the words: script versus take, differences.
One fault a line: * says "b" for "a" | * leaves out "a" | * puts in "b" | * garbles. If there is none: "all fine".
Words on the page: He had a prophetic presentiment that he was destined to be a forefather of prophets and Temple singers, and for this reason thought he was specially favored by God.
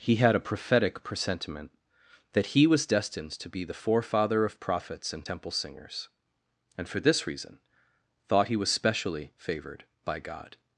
* says "the" for "a"